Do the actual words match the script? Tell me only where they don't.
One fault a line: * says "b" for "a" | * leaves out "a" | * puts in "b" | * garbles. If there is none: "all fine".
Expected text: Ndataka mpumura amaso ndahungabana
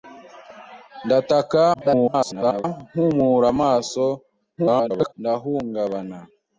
* garbles
* garbles